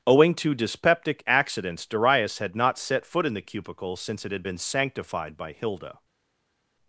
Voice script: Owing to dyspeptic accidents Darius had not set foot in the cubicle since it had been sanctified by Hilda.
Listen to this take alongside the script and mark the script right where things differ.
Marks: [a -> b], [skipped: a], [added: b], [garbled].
Owing to dyspeptic accidents Darius had not set foot in the cubicle since it had been sanctified by Hilda.